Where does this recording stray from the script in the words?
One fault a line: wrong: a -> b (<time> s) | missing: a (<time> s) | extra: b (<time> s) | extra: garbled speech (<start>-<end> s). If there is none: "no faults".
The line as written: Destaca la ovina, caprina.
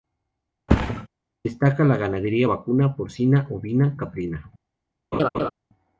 extra: ganadería vacuna porcina (2.0 s)